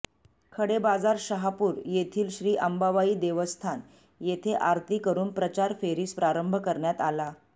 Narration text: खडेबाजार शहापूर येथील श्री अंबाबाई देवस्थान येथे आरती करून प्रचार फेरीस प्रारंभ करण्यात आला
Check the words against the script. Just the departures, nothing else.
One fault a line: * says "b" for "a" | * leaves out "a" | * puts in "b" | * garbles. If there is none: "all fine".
all fine